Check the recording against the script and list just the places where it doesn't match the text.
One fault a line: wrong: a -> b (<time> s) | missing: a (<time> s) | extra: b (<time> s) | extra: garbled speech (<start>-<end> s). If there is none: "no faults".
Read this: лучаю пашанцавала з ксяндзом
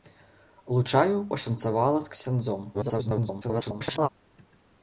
extra: garbled speech (2.7-4.1 s)